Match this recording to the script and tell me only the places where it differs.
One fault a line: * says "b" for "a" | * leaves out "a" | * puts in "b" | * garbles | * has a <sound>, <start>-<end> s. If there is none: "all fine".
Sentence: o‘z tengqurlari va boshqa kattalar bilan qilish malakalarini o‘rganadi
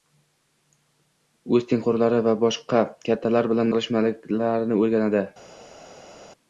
all fine